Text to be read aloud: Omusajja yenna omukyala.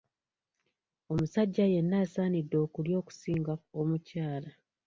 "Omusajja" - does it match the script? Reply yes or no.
yes